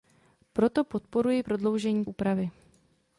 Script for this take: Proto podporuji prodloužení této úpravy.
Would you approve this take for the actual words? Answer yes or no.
no